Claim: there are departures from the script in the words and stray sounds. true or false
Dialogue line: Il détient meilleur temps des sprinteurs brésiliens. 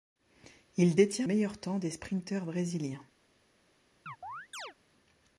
true